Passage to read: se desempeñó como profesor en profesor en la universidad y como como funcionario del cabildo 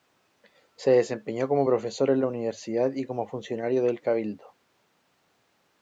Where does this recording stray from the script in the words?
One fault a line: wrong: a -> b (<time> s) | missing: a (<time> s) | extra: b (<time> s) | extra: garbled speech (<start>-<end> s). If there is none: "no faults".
missing: profesor en (2.2 s)
missing: como (3.3 s)